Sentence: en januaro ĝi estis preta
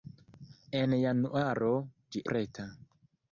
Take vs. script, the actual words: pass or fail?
fail